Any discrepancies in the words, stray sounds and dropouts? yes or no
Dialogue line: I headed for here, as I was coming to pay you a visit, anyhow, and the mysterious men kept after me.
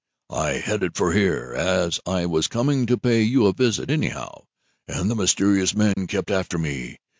yes